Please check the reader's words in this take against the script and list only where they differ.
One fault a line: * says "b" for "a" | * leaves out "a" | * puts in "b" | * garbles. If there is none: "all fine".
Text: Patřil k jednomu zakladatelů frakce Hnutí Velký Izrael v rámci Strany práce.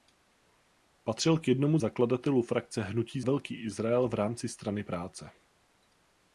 all fine